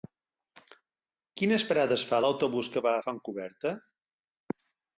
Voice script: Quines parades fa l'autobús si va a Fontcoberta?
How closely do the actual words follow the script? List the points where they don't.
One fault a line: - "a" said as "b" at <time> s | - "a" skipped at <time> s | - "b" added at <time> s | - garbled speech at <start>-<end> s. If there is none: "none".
- "si" said as "que" at 2.8 s